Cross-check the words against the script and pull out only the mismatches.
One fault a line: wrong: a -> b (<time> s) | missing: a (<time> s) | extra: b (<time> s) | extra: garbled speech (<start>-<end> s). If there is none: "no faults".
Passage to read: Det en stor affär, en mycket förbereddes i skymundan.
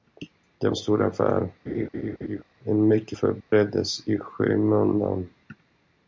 no faults